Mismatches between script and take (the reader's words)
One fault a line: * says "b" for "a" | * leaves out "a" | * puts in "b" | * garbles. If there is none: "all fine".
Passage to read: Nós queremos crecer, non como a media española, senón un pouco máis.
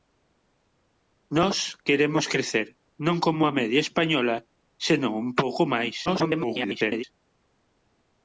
* garbles